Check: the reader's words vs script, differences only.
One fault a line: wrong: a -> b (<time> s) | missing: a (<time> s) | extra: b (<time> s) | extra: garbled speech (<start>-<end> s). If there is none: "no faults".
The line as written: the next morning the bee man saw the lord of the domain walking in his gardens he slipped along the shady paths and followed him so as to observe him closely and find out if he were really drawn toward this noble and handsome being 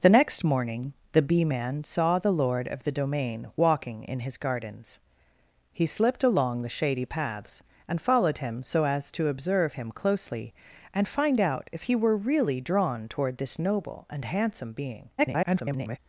extra: garbled speech (15.2-16.0 s)